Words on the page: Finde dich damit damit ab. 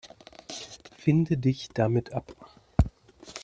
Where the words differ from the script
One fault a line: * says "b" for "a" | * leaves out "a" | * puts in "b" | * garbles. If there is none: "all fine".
* leaves out "damit"